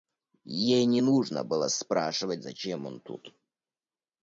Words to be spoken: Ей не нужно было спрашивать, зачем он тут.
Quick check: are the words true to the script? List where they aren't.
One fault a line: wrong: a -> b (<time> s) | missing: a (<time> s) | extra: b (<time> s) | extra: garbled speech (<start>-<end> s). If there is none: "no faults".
no faults